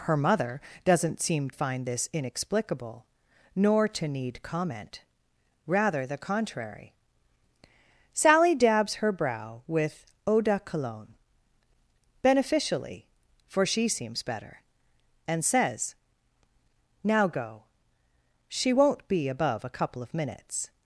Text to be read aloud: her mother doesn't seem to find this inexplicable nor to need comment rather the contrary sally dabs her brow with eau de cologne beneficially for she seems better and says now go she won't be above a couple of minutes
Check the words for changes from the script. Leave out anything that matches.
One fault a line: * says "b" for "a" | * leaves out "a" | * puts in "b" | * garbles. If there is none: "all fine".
* leaves out "to"